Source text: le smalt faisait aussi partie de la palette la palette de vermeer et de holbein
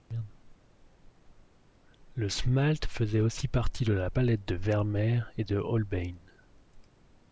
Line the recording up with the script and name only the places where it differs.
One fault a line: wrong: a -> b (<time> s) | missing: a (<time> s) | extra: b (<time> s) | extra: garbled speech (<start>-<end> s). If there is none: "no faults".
missing: la palette (4.5 s)